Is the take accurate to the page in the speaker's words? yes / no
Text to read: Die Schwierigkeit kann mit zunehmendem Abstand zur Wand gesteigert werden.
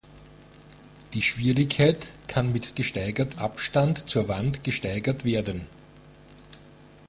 no